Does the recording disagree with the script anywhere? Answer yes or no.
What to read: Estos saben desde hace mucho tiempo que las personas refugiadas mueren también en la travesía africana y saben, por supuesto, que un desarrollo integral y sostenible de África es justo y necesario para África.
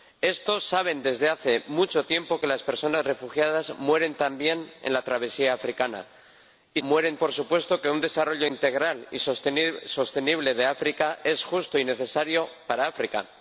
yes